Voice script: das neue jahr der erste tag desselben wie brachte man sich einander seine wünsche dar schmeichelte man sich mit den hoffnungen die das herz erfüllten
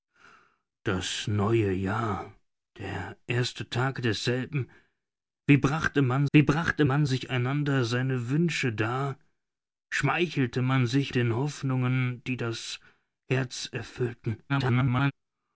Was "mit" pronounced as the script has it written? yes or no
no